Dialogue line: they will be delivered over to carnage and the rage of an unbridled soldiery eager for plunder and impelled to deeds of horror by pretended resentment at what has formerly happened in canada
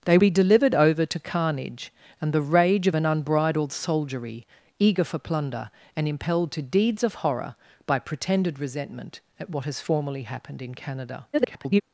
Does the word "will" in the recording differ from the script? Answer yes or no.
yes